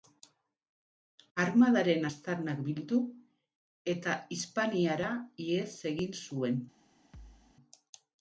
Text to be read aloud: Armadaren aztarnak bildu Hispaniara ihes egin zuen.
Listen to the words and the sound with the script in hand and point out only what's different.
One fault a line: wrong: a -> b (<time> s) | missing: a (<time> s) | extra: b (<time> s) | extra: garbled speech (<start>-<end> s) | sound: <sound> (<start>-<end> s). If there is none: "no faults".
extra: eta (4.0 s)
sound: thud (7.1-7.6 s)